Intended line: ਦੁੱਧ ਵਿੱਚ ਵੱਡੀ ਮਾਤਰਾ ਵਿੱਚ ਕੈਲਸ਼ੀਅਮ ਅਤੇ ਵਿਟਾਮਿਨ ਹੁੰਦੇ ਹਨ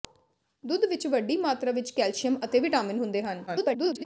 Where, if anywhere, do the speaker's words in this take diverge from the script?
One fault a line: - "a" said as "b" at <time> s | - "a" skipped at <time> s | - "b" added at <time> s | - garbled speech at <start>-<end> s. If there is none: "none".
- garbled speech at 3.5-4.0 s